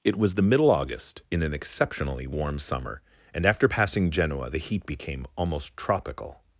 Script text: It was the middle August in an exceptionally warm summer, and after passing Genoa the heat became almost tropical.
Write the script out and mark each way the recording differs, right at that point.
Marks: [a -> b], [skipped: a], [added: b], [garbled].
It was the middle August in an exceptionally warm summer, and after passing Genoa the heat became almost tropical.